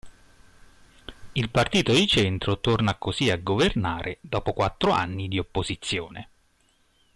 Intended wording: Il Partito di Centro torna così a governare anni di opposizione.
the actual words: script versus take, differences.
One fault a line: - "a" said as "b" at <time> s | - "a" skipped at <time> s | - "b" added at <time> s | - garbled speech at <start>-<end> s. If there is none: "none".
- "dopo quattro" added at 4.2 s